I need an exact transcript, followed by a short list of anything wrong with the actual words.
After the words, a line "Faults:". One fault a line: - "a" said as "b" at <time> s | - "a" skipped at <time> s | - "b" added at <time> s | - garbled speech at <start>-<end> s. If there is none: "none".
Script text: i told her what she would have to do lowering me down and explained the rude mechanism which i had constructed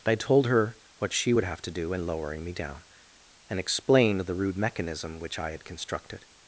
i told her what she would have to do in lowering me down and explained the rude mechanism which i had constructed
Faults:
- "in" added at 1.9 s